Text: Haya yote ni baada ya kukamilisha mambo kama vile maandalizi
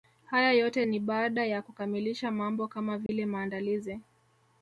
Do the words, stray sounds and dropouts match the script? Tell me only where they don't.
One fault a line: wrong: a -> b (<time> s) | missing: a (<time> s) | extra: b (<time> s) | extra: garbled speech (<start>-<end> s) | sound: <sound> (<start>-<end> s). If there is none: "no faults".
sound: dropout (3.1-3.1 s)